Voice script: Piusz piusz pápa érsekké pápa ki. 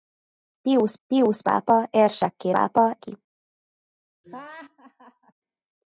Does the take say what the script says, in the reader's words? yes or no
yes